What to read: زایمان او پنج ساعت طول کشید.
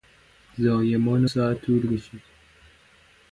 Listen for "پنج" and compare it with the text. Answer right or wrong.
wrong